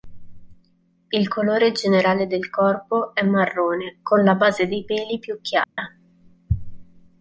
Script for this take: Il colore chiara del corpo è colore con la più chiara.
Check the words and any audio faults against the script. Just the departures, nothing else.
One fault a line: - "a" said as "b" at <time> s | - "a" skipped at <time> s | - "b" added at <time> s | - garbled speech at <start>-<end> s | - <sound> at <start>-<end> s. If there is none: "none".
- "chiara" said as "generale" at 1.7 s
- "colore" said as "marrone" at 3.2 s
- "base dei peli" added at 4.3 s
- dropout at 5.6-5.8 s